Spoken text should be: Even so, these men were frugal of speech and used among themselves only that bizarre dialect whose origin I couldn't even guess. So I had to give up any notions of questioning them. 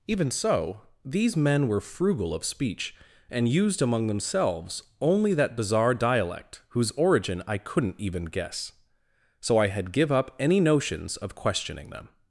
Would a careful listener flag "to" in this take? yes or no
yes